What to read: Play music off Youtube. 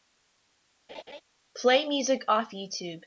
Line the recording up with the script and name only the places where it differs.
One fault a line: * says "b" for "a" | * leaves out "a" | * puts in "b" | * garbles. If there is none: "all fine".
all fine